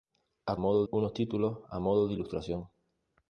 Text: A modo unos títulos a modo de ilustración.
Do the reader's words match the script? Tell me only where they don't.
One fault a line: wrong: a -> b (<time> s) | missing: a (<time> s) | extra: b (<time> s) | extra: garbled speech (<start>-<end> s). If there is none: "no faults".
no faults